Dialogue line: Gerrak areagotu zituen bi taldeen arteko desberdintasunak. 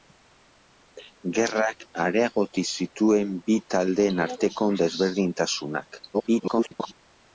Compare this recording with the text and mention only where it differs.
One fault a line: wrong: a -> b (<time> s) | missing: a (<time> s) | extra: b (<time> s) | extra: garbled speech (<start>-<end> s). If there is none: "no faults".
extra: garbled speech (6.1-6.9 s)